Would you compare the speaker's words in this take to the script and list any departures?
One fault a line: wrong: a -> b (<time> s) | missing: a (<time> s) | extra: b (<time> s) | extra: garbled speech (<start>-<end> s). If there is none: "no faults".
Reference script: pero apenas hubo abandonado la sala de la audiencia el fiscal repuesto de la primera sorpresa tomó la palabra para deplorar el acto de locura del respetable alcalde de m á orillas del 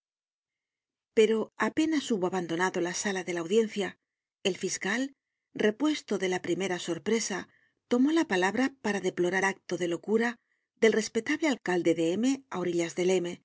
missing: el (9.4 s)